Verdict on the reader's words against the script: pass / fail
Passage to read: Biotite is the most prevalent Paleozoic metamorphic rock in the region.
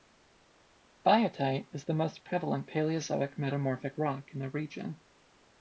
pass